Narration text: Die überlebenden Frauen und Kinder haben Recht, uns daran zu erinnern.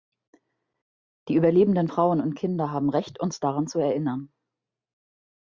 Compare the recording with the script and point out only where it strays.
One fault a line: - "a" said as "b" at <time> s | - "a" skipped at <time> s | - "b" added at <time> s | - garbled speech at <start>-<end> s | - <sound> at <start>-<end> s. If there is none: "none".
none